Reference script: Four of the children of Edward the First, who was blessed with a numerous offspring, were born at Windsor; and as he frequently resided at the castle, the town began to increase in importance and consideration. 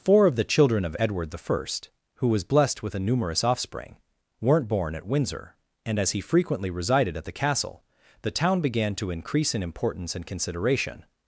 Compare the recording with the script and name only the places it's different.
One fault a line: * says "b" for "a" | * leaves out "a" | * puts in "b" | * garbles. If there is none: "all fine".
* says "weren't" for "were"